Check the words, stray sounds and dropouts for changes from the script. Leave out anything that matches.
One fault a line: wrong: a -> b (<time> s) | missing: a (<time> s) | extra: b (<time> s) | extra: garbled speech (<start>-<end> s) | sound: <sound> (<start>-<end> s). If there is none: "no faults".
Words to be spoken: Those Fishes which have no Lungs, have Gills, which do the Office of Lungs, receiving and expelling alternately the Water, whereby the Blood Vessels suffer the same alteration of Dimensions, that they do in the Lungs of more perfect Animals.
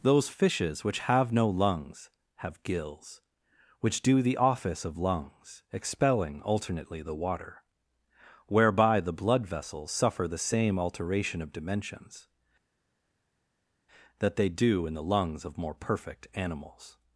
missing: receiving and (5.6 s)